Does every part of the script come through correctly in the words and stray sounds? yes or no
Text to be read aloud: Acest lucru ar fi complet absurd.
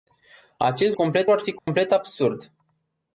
no